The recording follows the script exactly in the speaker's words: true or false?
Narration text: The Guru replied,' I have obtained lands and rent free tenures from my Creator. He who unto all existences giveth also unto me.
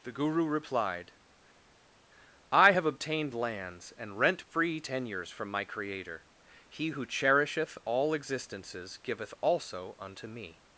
false